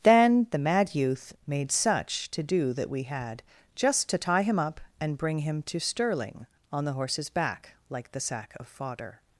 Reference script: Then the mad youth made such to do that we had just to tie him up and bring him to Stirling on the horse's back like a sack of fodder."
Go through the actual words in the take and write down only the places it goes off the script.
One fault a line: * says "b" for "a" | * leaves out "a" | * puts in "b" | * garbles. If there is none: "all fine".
* says "the" for "a"